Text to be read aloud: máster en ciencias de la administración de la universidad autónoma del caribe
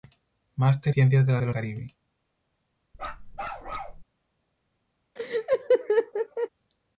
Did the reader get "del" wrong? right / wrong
wrong